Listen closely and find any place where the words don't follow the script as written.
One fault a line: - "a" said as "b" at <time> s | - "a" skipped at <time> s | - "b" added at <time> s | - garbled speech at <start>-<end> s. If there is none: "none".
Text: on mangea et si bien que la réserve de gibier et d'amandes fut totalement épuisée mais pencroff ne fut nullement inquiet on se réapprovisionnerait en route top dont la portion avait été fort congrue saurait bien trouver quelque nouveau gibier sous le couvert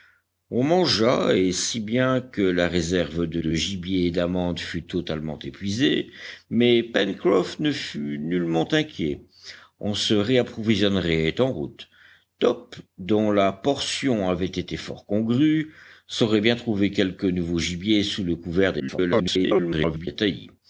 - "de" added at 3.4 s
- garbled speech at 18.8-20.1 s